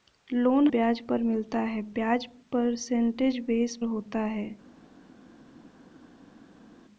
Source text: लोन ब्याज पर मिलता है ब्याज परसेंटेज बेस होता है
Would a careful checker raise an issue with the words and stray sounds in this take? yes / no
no